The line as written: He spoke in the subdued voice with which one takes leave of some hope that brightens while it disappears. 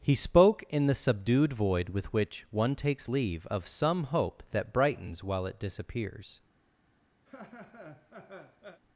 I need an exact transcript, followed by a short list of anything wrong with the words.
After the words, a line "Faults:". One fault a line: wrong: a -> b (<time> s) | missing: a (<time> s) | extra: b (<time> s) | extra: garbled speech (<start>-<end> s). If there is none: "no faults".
He spoke in the subdued void with which one takes leave of some hope that brightens while it disappears.
Faults:
wrong: voice -> void (1.5 s)